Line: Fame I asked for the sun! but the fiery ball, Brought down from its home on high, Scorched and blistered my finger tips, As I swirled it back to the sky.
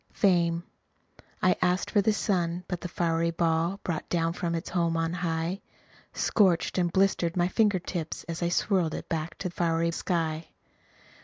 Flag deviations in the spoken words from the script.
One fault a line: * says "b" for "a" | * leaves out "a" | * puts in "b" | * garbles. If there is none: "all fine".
* says "fiery" for "the"